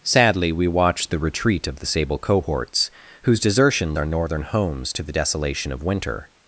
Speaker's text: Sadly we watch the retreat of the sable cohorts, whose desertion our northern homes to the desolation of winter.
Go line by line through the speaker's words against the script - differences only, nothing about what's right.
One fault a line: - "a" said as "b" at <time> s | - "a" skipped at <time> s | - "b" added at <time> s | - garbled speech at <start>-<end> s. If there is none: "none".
none